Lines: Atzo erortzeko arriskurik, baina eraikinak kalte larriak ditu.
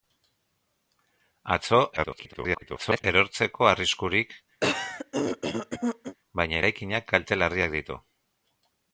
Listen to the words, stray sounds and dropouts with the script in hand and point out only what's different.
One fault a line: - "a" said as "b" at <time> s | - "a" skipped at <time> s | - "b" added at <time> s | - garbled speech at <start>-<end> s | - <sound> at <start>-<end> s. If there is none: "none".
- garbled speech at 2.0-3.0 s
- throat clearing at 4.6-6.2 s